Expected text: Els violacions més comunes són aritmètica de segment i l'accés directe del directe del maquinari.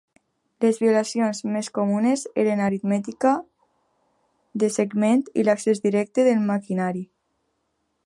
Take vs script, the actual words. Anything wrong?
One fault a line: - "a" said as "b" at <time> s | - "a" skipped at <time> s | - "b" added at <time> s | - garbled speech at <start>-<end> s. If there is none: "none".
- "Els" said as "Les" at 0.6 s
- "són" said as "eren" at 2.4 s
- "directe del" skipped at 6.5 s